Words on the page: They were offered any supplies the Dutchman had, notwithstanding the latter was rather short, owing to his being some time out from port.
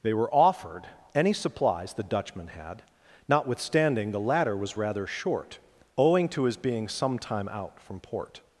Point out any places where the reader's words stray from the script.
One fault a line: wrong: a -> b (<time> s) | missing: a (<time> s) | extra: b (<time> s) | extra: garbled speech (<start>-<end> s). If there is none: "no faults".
no faults